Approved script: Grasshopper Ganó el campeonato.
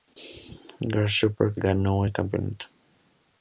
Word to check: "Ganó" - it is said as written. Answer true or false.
true